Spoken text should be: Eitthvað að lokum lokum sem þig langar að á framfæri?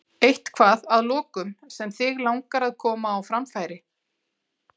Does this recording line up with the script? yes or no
no